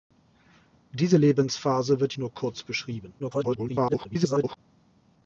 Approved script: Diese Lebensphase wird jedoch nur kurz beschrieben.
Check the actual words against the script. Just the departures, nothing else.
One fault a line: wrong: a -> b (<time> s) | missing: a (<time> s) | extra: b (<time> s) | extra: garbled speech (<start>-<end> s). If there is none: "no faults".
missing: jedoch (2.1 s)
extra: garbled speech (3.2-4.6 s)